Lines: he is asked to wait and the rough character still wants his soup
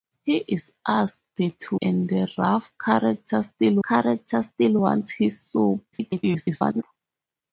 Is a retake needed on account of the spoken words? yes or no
yes